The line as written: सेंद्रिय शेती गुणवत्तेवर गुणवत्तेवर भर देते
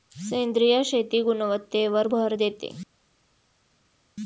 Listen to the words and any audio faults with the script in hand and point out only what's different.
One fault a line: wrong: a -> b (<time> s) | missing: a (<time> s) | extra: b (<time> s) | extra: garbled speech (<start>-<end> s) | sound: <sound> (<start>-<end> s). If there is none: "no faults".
missing: गुणवत्तेवर (2.1 s)